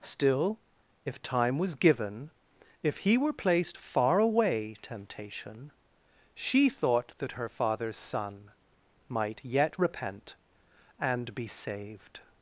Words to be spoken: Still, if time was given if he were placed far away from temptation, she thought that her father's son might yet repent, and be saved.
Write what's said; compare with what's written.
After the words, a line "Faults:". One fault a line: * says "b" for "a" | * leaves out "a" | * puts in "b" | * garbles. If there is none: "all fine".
Still, if time was given if he were placed far away temptation, she thought that her father's son might yet repent, and be saved.
Faults:
* leaves out "from"